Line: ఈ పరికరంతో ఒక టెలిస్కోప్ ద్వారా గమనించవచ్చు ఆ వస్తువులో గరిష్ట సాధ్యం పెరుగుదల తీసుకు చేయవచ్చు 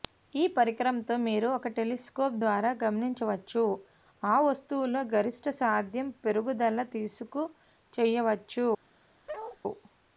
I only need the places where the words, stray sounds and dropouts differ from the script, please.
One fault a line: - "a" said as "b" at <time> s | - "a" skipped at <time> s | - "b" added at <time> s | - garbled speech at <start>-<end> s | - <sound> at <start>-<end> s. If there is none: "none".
- "మీరు" added at 1.2 s
- bark at 9.3-9.6 s